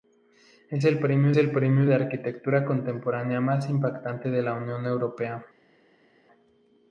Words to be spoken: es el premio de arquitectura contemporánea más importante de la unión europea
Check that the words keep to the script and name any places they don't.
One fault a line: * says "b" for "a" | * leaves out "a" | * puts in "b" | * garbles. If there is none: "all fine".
* puts in "el premio"